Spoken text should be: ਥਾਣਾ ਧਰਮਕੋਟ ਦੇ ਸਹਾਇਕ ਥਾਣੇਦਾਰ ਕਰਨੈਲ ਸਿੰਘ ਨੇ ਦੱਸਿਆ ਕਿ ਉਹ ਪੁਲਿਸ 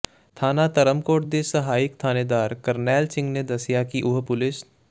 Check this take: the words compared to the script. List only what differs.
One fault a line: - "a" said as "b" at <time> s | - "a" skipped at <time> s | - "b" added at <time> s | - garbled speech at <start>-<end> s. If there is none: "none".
none